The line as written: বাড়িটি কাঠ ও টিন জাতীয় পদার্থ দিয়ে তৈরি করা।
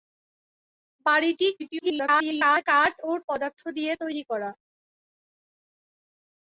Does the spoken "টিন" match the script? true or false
false